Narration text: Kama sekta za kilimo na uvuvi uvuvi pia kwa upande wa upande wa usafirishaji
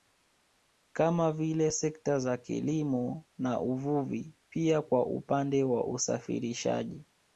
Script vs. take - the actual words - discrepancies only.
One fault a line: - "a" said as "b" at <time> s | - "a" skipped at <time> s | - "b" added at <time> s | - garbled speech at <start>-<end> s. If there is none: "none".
- "vile" added at 1.3 s
- "uvuvi" skipped at 4.3 s
- "upande wa" skipped at 5.9 s